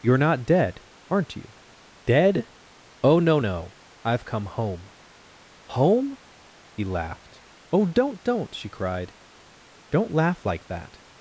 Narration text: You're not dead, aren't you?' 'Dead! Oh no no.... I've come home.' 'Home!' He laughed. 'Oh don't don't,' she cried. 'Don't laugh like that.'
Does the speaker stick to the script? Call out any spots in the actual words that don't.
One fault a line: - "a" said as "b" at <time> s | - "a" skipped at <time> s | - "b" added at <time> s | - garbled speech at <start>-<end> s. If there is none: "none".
none